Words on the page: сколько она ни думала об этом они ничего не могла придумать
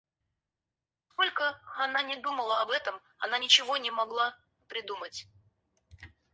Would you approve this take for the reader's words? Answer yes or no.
no